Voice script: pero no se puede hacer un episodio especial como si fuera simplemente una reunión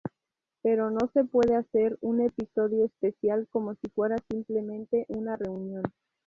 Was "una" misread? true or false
false